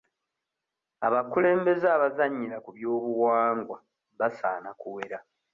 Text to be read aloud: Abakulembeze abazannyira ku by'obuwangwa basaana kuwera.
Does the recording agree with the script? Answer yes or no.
yes